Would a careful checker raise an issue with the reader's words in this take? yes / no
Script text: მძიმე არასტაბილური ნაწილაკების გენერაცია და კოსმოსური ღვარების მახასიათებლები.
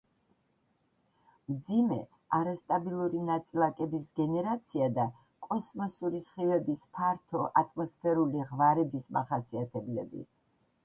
yes